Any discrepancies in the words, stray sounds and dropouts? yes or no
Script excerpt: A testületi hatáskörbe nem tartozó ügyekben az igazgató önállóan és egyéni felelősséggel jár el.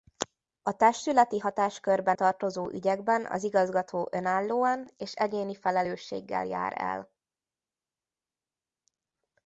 yes